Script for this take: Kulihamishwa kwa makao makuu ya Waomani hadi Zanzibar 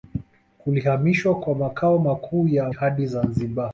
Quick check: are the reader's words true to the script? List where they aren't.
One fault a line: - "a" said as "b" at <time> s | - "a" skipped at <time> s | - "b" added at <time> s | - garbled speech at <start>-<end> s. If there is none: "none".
- "Waomani" skipped at 2.7 s